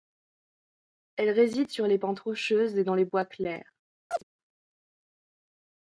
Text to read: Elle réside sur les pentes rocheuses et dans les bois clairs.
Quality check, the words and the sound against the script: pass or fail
fail